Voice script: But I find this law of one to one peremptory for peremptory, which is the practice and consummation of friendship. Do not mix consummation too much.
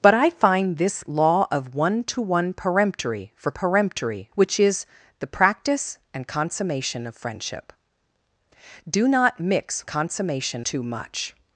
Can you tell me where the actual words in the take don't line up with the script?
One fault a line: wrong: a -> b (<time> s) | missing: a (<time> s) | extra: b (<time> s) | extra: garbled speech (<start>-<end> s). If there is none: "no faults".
no faults